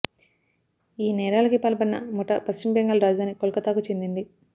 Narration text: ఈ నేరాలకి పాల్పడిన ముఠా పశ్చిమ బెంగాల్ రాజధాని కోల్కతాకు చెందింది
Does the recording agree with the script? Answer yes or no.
yes